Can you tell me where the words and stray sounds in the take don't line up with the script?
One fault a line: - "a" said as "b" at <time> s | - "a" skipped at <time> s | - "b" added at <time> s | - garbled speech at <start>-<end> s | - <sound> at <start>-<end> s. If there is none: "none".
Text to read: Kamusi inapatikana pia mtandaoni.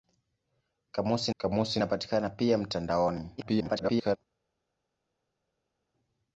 - "kamusi" added at 1.4 s
- garbled speech at 3.4-4.2 s